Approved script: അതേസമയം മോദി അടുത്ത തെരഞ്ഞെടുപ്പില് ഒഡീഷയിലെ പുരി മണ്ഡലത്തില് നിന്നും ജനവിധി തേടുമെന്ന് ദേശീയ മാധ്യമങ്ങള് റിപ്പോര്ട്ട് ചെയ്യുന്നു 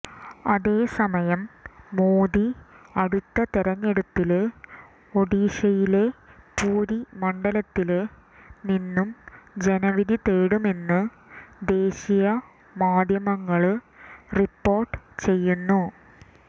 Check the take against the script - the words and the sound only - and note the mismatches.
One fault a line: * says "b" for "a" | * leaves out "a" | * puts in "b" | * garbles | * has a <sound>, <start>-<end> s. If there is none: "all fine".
all fine